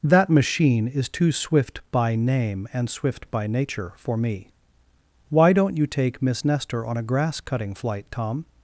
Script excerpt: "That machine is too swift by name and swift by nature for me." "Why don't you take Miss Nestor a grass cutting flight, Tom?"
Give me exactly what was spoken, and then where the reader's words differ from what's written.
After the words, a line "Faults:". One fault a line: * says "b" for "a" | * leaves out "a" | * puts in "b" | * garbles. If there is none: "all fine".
"That machine is too swift by name and swift by nature for me." "Why don't you take Miss Nestor on a grass cutting flight, Tom?"
Faults:
* puts in "on"